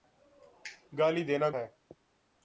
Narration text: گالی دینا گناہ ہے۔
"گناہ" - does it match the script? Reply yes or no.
no